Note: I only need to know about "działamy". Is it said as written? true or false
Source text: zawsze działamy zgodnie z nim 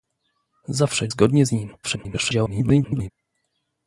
false